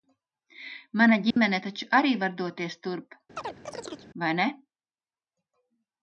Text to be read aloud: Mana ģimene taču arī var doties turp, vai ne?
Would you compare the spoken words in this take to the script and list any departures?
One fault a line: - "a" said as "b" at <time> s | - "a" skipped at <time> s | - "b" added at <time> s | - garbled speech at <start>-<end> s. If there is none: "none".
none